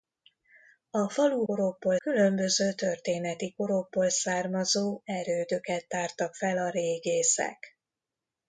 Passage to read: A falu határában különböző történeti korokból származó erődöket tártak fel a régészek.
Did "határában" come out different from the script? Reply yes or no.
yes